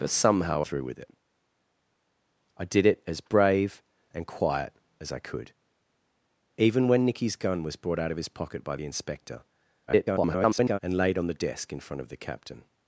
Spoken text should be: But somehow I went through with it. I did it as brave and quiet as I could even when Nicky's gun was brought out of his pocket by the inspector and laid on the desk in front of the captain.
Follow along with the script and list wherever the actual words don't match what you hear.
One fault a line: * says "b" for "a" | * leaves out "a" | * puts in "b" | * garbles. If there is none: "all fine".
* leaves out "I went"
* garbles